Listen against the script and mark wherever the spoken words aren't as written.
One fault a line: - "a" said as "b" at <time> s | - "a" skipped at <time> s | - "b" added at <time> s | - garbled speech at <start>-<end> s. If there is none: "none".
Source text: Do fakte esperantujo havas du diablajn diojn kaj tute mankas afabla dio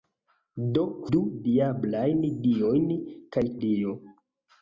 - "fakte esperantujo havas" skipped at 0.8 s
- "tute mankas afabla" skipped at 3.4 s